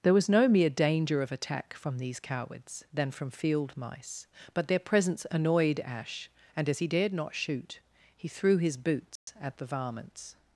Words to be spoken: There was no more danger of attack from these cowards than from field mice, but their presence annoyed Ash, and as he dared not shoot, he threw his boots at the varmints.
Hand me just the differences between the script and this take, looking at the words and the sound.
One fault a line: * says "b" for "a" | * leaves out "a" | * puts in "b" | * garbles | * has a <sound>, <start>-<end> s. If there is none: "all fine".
* says "mere" for "more"
* has a dropout, 9.2-9.3 s